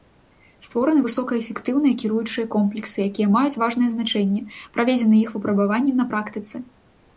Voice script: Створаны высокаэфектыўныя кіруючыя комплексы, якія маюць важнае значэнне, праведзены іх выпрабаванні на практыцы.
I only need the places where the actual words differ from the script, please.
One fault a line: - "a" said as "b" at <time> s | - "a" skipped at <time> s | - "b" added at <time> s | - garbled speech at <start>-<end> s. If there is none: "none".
none